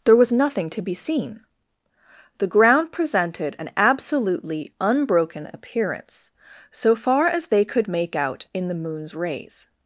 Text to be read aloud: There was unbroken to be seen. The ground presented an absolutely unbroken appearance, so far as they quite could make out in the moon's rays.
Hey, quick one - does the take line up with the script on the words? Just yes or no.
no